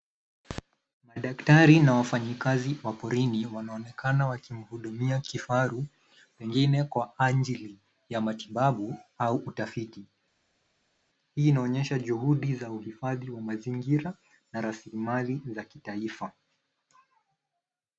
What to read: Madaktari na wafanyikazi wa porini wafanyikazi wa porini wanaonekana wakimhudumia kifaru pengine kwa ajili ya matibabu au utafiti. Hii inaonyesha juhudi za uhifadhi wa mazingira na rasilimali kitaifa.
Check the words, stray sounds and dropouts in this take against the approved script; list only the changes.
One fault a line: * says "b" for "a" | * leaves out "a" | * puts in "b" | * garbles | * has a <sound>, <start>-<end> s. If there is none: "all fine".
* leaves out "wafanyikazi wa porini"
* puts in "za"